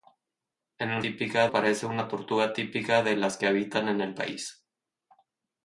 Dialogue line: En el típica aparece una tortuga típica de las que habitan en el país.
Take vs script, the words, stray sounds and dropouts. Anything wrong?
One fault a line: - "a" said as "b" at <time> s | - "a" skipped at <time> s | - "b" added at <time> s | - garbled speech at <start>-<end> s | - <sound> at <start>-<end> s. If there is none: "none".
none